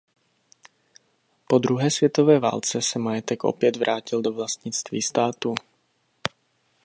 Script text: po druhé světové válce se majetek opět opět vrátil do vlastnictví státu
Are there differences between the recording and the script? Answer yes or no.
yes